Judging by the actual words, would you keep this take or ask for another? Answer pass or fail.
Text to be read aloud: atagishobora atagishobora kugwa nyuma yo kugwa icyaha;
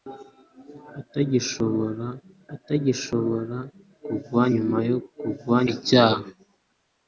pass